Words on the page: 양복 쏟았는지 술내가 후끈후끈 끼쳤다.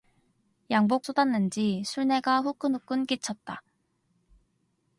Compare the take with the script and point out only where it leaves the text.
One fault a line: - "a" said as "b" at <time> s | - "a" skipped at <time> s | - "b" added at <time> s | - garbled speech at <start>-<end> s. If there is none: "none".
none